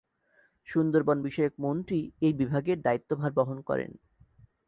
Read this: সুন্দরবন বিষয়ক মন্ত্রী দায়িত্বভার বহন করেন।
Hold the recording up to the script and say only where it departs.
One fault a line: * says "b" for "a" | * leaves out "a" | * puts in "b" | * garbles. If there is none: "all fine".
* puts in "এই বিভাগের"